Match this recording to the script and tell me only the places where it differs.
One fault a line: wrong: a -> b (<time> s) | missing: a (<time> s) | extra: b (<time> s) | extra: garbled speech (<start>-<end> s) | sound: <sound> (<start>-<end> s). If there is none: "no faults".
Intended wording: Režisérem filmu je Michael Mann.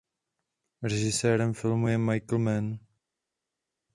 no faults